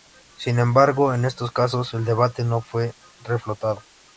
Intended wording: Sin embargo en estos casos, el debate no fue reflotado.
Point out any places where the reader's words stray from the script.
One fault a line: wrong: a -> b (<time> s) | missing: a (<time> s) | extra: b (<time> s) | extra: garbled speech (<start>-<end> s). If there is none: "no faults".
no faults